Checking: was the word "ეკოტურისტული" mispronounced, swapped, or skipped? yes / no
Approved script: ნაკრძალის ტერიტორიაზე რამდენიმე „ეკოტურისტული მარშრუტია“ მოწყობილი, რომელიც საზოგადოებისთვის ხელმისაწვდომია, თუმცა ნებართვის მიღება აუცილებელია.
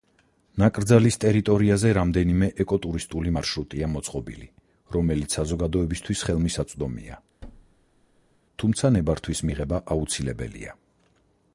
no